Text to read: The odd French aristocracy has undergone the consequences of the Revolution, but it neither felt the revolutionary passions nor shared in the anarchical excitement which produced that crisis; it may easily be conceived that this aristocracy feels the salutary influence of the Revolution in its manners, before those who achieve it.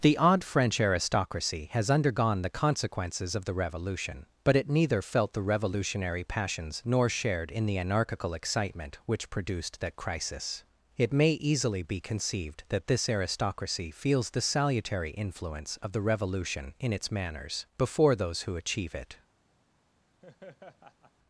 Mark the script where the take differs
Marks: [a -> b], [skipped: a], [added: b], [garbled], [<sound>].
The odd French aristocracy has undergone the consequences of the Revolution, but it neither felt the revolutionary passions nor shared in the anarchical excitement which produced that crisis; it may easily be conceived that this aristocracy feels the salutary influence of the Revolution in its manners, before those who achieve it. [laugh]